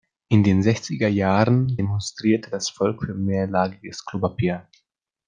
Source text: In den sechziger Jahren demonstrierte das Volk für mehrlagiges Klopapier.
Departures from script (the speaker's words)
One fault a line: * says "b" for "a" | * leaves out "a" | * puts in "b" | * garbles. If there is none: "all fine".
all fine